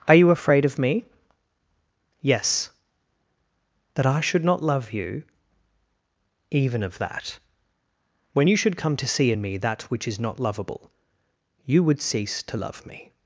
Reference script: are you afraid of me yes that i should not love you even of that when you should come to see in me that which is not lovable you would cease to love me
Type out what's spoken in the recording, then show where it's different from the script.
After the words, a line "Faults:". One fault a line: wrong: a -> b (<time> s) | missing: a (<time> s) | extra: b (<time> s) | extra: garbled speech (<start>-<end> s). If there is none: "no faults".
are you afraid of me yes that i should not love you even of that when you should come to see in me that which is not lovable you would cease to love me
Faults:
no faults